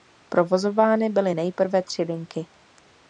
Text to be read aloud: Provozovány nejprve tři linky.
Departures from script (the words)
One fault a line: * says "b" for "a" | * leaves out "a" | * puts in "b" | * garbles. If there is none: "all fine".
* puts in "byly"